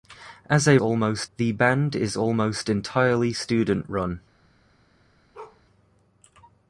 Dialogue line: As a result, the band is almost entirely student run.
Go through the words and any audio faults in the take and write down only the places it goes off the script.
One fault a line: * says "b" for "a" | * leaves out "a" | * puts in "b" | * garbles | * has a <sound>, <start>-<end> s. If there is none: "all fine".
* says "almost" for "result"
* has a bark, 5.3-5.6 s